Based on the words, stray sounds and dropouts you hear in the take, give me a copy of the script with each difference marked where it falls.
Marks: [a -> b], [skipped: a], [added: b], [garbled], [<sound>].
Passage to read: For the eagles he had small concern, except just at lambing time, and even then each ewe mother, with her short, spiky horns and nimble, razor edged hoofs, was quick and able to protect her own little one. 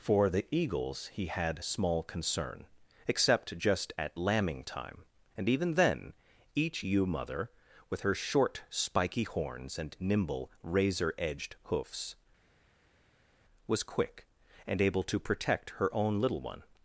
For the eagles he had small concern, except just at lambing time, and even then each ewe mother, with her short, spiky horns and nimble, razor edged hoofs, was quick and able to protect her own little one.